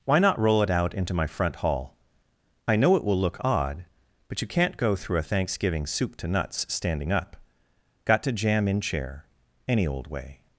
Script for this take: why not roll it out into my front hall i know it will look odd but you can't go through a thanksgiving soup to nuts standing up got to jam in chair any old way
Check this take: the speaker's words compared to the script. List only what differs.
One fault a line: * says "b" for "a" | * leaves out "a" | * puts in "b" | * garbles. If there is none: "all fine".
all fine